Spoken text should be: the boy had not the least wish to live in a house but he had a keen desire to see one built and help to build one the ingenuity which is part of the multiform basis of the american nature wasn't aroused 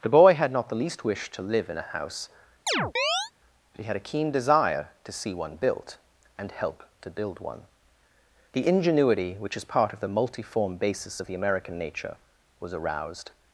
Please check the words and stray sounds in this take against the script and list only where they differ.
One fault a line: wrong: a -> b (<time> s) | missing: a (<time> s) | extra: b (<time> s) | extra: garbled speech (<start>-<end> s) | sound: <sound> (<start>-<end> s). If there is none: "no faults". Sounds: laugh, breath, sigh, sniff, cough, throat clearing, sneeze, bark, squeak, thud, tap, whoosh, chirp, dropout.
sound: chirp (2.7-3.3 s)
wrong: wasn't -> was (12.6 s)